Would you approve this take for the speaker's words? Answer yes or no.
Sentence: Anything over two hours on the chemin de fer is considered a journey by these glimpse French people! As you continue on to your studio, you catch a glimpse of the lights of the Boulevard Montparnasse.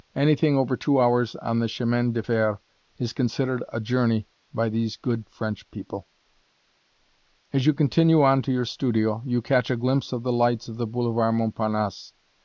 no